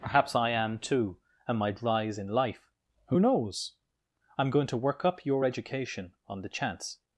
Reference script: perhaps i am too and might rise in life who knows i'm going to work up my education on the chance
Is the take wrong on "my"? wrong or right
wrong